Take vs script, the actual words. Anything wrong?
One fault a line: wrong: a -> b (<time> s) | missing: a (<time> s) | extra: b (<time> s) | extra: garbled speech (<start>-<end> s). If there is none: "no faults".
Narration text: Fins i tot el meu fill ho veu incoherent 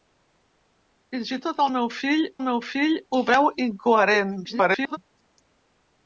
extra: meu fill (2.4 s)
extra: garbled speech (4.4-5.0 s)